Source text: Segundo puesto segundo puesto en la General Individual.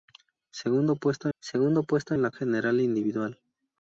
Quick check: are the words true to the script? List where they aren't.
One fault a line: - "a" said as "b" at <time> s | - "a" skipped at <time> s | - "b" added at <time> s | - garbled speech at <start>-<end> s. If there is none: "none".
none